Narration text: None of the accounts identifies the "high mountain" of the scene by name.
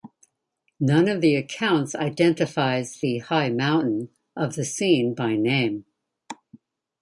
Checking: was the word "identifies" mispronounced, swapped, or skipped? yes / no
no